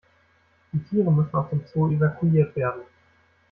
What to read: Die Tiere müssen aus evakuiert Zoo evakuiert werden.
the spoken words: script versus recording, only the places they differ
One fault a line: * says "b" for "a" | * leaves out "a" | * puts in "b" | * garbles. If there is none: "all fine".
* says "dem" for "evakuiert"